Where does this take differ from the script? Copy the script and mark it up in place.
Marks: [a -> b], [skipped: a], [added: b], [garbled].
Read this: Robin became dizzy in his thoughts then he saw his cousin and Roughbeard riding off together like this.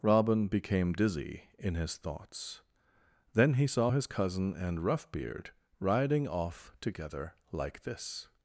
Robin became dizzy in his thoughts then he saw his cousin and Roughbeard riding off together like this.